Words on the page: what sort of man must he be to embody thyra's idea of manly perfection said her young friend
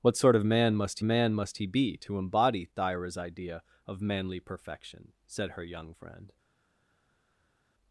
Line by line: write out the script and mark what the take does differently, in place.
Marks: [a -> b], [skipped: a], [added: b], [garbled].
what sort of man must [added: man must] he be to embody thyra's idea of manly perfection said her young friend